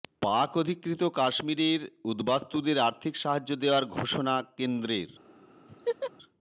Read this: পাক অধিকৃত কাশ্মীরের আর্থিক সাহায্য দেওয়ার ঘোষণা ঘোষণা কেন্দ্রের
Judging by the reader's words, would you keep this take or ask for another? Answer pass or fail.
fail